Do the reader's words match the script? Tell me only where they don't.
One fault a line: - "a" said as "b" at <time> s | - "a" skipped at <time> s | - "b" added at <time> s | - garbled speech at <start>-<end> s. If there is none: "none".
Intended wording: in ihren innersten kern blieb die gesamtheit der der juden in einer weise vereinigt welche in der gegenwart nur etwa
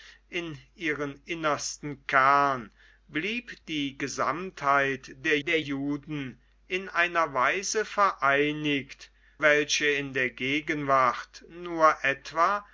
none